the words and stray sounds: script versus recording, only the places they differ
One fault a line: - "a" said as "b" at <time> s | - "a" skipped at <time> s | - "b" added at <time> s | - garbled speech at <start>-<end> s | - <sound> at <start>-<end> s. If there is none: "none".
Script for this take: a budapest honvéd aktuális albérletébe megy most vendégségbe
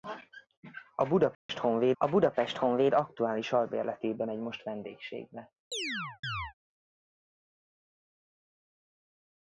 - dropout at 1.3-1.5 s
- "a budapest honvéd" added at 2.0 s
- chirp at 5.7-6.5 s